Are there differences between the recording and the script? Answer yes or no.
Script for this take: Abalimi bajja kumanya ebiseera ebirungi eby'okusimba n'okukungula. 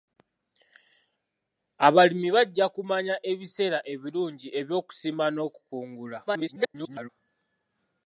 yes